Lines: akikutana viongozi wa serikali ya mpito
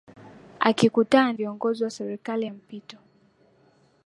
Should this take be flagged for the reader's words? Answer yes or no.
no